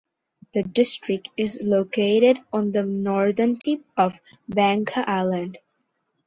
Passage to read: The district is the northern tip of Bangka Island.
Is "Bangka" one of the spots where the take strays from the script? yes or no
no